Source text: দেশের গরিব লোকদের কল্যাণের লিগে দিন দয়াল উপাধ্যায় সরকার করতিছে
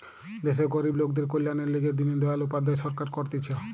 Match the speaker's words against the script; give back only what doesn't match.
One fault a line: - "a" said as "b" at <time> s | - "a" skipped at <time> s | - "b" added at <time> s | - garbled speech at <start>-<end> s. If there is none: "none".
none